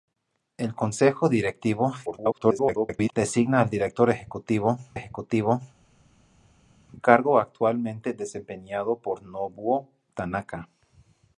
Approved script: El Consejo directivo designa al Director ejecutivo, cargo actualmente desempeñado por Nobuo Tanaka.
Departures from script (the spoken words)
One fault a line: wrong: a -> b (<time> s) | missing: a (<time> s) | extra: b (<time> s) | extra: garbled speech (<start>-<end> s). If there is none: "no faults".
extra: garbled speech (2.1-3.1 s)
extra: ejecutivo (4.9 s)